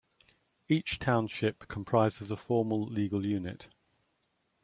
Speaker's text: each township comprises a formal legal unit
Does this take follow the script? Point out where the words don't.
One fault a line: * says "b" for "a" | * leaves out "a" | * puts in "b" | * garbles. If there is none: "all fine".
all fine